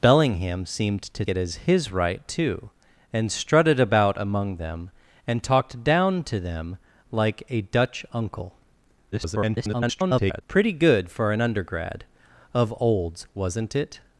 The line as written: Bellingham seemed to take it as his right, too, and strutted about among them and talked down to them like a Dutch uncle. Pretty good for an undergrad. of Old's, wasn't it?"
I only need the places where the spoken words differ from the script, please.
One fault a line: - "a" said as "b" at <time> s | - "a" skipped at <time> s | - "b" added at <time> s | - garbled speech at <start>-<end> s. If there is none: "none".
- "take" skipped at 1.2 s
- garbled speech at 9.1-10.4 s